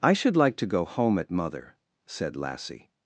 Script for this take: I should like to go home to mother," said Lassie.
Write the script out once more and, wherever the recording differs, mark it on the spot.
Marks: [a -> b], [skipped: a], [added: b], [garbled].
I should like to go home [to -> at] mother," said Lassie.